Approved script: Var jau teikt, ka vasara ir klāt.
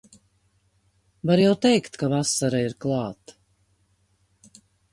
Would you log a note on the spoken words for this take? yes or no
no